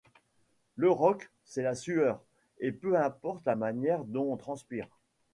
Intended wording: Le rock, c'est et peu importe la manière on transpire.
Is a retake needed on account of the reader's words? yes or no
yes